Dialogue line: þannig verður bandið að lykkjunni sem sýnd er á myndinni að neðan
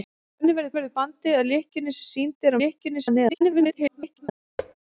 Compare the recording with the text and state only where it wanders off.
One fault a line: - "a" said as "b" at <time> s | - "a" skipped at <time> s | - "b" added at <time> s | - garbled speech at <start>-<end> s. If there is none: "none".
- "verður" added at 0.8 s
- "myndinni" said as "lykkjunni" at 2.6 s
- garbled speech at 3.3-4.3 s